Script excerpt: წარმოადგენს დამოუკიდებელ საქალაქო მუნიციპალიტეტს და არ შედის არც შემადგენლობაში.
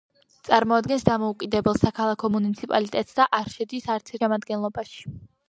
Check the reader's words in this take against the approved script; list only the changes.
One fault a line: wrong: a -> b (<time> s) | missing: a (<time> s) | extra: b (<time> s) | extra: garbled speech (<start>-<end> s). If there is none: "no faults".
no faults